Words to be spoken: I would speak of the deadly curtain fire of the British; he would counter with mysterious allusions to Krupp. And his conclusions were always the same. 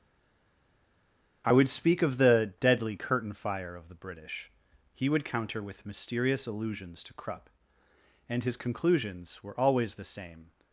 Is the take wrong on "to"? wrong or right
right